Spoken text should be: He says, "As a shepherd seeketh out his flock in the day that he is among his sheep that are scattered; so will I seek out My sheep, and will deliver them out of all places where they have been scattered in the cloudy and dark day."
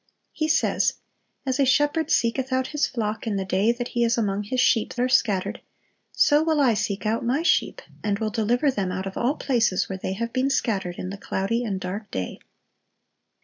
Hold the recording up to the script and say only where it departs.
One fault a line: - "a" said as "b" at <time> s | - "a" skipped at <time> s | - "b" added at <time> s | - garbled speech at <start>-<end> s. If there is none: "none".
- "that" skipped at 5.0 s